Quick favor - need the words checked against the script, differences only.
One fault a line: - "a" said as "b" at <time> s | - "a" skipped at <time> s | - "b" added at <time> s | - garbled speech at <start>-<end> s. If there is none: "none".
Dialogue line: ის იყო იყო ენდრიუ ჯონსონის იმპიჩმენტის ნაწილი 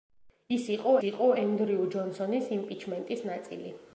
none